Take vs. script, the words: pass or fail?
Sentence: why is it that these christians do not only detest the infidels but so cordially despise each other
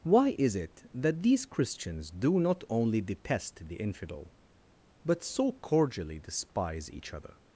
fail